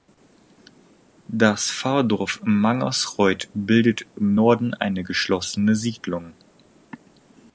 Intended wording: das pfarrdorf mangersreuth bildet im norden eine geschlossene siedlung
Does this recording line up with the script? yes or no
yes